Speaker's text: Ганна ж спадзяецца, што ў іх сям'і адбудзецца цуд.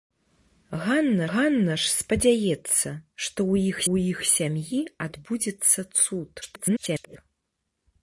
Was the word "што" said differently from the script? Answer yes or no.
no